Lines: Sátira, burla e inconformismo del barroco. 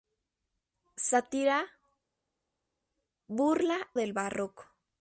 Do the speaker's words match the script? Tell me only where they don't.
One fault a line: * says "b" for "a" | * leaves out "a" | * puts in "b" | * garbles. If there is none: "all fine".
* leaves out "e inconformismo"